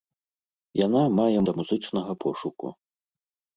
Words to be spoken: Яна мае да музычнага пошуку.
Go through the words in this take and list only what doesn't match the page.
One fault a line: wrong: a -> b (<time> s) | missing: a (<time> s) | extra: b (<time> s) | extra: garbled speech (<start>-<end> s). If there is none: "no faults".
no faults